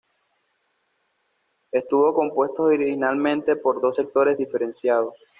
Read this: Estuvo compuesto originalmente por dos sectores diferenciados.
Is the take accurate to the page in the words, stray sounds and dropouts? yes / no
yes